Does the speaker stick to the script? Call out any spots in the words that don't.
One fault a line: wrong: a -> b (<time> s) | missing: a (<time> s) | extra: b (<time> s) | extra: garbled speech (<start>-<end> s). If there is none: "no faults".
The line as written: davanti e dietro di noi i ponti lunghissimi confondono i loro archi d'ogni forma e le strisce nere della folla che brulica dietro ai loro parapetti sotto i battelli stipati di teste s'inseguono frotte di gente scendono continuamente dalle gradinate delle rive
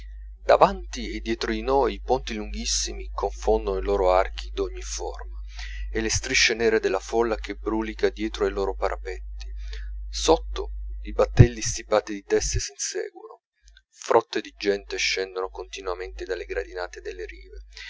no faults